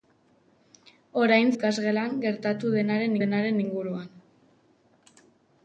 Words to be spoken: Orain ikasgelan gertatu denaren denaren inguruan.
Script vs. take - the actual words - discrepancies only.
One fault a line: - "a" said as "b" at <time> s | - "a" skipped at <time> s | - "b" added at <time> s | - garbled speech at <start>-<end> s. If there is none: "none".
none